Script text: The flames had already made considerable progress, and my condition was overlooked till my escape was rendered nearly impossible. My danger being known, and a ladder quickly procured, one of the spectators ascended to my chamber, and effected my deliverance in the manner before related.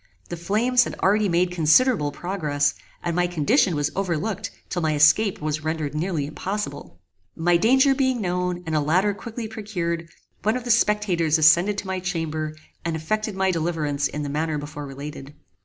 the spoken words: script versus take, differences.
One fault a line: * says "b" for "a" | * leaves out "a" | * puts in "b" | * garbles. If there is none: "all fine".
all fine